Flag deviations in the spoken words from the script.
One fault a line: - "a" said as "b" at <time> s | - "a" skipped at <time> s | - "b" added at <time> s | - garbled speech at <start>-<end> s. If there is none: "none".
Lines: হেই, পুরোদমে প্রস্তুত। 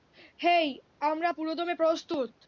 - "আমরা" added at 1.0 s